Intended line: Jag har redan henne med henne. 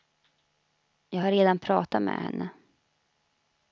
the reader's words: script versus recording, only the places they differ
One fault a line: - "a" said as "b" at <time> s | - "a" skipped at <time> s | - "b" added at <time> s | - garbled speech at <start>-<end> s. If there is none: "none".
- "henne" said as "pratat" at 1.6 s